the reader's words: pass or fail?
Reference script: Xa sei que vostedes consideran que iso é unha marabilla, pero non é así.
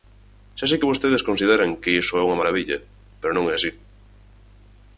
pass